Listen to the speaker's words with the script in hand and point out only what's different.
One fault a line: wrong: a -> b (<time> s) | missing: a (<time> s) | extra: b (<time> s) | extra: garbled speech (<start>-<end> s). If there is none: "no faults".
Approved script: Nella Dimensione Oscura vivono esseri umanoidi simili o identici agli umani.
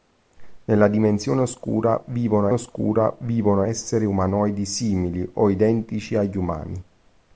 extra: Oscura vivono (2.5 s)